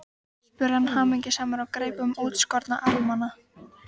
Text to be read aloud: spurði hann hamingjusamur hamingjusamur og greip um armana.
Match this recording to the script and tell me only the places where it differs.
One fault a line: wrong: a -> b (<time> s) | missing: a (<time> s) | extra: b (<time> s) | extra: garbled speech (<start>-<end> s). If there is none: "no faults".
missing: hamingjusamur (1.6 s)
extra: útskorna (2.2 s)